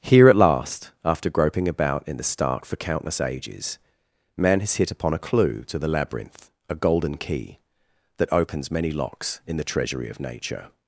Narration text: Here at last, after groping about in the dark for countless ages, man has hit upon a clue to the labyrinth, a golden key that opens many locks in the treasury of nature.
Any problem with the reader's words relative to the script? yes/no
yes